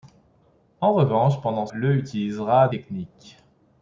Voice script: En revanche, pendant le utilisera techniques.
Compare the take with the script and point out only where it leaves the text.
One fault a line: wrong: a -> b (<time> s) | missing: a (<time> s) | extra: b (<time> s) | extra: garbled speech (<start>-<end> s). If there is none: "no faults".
no faults